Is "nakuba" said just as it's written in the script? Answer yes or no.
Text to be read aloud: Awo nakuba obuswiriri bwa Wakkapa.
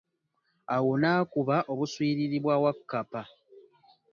yes